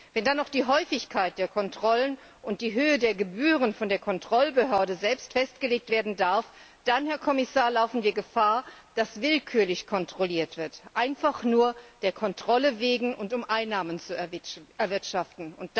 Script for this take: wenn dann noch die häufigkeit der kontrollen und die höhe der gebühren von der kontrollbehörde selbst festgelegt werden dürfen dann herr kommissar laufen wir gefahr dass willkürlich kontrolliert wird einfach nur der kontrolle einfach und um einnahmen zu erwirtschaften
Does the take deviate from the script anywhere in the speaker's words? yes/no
yes